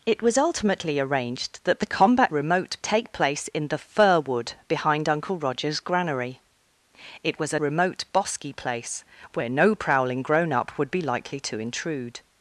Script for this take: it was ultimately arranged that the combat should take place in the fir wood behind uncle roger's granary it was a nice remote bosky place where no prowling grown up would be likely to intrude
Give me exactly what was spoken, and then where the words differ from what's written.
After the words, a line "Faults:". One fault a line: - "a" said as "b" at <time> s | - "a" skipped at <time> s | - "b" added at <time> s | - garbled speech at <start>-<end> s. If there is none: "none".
it was ultimately arranged that the combat remote take place in the fir wood behind uncle roger's granary it was a remote bosky place where no prowling grown up would be likely to intrude
Faults:
- "should" said as "remote" at 2.3 s
- "nice" skipped at 7.6 s